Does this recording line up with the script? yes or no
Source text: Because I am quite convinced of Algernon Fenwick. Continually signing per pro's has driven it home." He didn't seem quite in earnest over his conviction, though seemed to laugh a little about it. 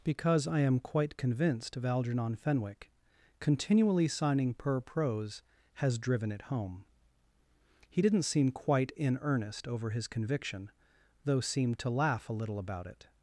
yes